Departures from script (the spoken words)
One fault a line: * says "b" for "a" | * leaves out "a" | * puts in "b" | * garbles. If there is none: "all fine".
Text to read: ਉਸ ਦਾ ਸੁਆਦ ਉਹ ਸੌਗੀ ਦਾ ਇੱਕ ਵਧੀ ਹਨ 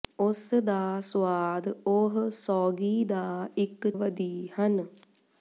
all fine